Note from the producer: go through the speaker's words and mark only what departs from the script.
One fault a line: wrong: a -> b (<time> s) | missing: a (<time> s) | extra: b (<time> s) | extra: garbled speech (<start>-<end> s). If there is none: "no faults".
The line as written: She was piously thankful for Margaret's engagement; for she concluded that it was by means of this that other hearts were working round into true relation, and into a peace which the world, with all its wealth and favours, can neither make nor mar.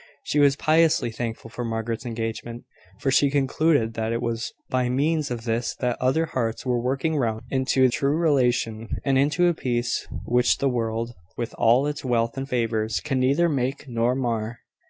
no faults